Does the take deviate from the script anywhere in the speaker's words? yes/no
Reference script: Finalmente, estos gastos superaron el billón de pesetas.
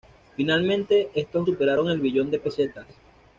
yes